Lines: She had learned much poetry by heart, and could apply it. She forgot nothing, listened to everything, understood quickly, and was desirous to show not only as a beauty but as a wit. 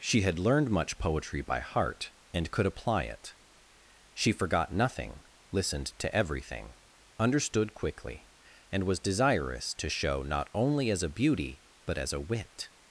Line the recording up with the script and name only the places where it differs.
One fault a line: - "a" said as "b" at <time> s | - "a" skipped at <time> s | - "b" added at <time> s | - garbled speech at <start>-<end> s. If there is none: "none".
none